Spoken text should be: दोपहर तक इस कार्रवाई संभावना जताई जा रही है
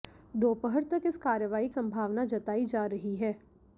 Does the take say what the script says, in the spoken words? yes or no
yes